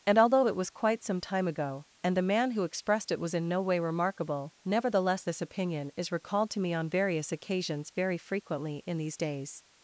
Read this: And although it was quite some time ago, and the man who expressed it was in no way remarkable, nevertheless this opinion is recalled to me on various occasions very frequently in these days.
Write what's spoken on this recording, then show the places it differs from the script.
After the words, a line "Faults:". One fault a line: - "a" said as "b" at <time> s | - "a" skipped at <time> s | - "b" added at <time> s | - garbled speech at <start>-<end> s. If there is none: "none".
And although it was quite some time ago, and the man who expressed it was in no way remarkable, nevertheless this opinion is recalled to me on various occasions very frequently in these days.
Faults:
none